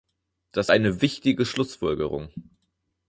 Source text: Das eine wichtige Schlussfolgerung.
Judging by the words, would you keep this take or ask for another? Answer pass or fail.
pass